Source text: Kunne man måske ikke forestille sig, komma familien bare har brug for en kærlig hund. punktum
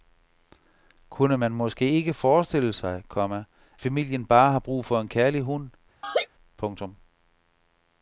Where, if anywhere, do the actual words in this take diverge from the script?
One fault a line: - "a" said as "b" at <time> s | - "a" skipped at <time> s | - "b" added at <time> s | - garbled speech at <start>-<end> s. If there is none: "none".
none